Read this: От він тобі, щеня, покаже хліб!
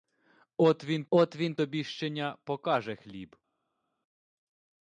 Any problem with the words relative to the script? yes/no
yes